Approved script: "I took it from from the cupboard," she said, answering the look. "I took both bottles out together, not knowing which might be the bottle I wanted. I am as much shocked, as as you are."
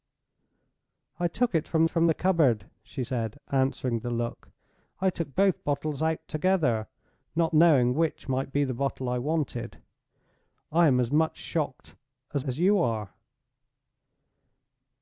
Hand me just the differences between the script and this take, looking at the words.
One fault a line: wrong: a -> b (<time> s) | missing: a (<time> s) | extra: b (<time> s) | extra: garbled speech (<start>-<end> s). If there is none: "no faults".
no faults